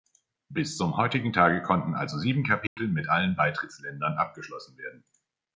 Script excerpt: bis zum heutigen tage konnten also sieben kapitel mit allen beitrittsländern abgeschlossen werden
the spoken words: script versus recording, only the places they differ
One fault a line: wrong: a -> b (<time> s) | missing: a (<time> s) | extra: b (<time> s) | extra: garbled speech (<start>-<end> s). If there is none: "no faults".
no faults